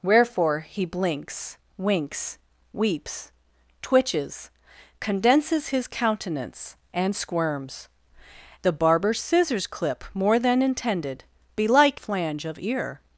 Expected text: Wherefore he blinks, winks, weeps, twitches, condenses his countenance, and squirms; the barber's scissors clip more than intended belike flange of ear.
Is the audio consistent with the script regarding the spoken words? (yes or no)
yes